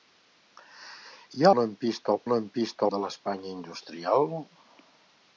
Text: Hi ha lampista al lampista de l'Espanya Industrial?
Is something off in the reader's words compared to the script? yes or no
no